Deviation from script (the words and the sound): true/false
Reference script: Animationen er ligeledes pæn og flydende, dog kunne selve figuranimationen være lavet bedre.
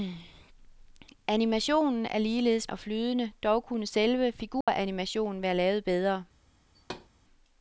true